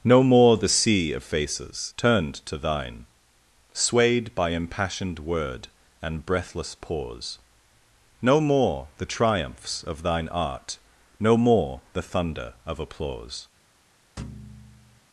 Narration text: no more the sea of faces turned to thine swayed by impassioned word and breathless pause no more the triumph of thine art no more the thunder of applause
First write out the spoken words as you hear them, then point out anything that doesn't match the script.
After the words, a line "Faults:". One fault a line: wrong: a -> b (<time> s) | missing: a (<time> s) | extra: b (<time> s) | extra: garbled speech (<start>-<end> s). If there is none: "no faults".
no more the sea of faces turned to thine swayed by impassioned word and breathless pause no more the triumphs of thine art no more the thunder of applause
Faults:
wrong: triumph -> triumphs (9.1 s)